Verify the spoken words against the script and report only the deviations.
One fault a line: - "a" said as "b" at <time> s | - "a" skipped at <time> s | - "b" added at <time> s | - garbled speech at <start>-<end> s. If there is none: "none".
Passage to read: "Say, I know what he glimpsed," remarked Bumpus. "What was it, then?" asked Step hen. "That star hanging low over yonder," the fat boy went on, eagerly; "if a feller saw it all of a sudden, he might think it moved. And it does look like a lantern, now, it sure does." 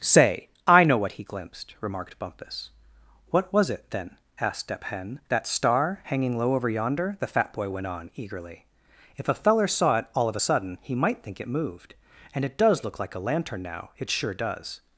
none